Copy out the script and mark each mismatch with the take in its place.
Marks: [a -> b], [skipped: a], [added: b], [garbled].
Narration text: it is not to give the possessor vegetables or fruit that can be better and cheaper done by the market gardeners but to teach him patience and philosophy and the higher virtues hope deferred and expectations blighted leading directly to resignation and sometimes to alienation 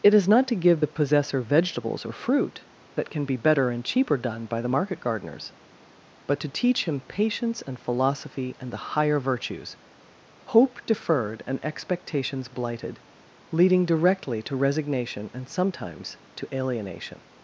it is not to give the possessor vegetables or fruit that can be better and cheaper done by the market gardeners but to teach him patience and philosophy and the higher virtues hope deferred and expectations blighted leading directly to resignation and sometimes to alienation